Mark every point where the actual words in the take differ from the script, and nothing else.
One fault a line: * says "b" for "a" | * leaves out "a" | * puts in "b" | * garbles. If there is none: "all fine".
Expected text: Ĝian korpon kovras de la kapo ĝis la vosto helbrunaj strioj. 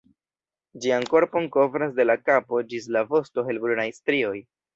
all fine